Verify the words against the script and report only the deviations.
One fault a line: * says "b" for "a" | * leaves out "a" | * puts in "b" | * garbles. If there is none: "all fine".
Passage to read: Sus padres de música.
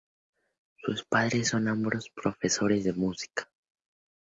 * puts in "son ambos profesores"